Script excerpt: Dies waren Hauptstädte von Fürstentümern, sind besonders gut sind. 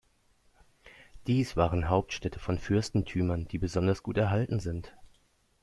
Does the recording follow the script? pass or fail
fail